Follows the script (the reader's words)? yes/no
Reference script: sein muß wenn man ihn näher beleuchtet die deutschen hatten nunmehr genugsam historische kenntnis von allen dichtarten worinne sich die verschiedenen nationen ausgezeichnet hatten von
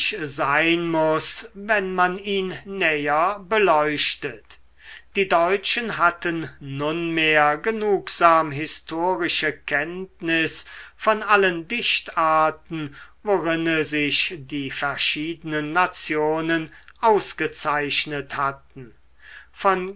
yes